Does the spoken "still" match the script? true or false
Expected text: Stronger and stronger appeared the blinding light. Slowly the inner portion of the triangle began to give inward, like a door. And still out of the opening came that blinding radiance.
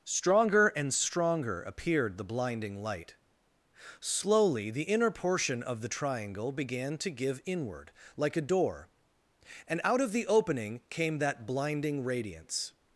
false